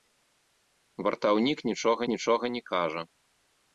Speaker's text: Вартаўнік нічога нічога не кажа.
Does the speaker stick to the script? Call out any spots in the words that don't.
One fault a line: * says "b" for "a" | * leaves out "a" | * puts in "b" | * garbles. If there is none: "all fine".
all fine